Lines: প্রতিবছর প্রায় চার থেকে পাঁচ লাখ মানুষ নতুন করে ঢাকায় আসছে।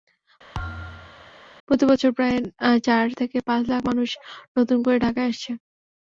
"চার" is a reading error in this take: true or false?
false